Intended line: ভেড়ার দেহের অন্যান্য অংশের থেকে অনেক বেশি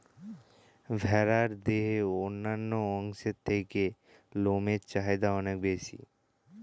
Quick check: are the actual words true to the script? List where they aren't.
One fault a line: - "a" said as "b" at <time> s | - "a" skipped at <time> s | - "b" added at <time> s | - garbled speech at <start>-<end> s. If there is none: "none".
- "লোমের চাহিদা" added at 4.4 s